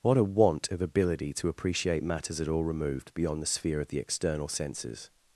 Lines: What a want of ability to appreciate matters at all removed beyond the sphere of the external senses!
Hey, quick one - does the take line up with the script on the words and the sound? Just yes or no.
yes